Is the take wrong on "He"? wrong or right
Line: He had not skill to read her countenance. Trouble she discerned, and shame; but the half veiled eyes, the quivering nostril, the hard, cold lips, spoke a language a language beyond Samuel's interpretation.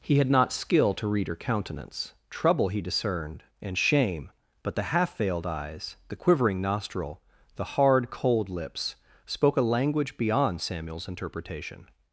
right